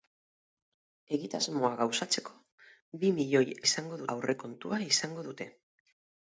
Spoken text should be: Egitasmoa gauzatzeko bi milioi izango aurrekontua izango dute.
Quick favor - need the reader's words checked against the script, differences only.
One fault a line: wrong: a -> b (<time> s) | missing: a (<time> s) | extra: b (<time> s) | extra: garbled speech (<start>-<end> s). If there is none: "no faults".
no faults